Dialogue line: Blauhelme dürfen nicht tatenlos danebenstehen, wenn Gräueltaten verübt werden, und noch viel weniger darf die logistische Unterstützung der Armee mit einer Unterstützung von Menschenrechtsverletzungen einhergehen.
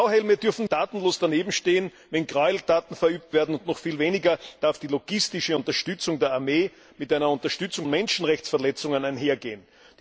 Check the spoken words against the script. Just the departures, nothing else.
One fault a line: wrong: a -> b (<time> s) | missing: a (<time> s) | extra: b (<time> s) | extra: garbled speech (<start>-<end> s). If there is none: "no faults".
missing: nicht (0.7 s)
missing: von (7.9 s)